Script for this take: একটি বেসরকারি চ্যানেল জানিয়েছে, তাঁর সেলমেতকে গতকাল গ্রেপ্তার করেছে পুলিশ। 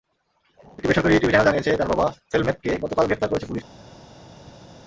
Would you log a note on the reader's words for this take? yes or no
yes